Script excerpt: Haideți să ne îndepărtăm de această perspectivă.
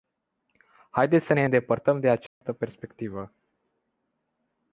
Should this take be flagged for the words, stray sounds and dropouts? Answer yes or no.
yes